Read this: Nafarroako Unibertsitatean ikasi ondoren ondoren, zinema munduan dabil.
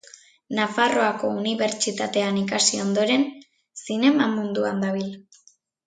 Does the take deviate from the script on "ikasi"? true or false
false